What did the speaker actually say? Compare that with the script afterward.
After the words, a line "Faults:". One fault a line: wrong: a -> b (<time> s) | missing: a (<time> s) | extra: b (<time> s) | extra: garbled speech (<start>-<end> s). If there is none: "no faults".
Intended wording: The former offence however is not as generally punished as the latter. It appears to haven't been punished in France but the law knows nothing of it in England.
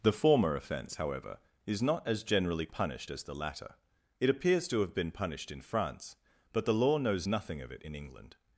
The former offence however is not as generally punished as the latter. It appears to have been punished in France but the law knows nothing of it in England.
Faults:
wrong: haven't -> have (4.8 s)